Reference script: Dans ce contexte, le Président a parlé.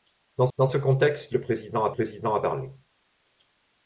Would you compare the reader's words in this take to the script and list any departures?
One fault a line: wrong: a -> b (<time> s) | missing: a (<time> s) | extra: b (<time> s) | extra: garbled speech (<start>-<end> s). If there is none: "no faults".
extra: dans (0.6 s)
extra: Président a (1.9 s)